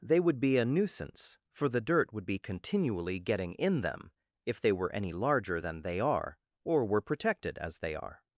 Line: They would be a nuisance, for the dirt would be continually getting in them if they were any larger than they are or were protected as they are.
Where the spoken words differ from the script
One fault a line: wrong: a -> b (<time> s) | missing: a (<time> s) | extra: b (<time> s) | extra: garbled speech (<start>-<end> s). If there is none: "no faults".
no faults